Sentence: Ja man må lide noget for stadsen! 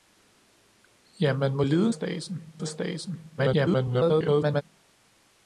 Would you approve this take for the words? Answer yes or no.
no